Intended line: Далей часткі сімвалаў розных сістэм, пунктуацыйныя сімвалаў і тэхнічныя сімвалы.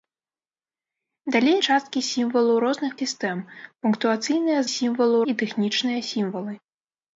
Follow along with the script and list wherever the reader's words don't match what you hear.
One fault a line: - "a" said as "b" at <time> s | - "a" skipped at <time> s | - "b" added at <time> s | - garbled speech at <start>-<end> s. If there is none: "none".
none